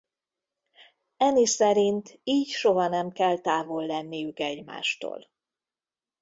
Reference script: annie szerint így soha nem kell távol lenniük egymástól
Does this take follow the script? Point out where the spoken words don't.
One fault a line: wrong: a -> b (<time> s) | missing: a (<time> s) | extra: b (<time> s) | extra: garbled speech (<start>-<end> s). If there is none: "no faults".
no faults